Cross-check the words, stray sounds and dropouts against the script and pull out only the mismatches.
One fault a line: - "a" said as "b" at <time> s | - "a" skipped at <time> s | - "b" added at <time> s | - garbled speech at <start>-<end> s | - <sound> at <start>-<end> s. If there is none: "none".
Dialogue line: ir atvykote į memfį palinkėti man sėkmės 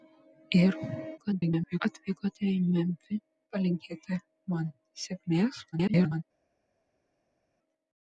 - garbled speech at 1.2-1.8 s
- garbled speech at 5.7-6.2 s